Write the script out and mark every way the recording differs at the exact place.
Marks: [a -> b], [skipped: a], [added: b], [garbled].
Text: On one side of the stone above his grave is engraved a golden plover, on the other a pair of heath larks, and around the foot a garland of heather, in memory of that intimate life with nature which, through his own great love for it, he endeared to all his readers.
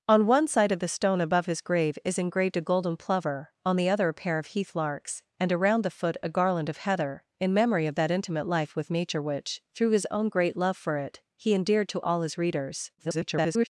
On one side of the stone above his grave is engraved a golden plover, on the other a pair of heath larks, and around the foot a garland of heather, in memory of that intimate life with nature which, through his own great love for it, he endeared to all his readers. [garbled]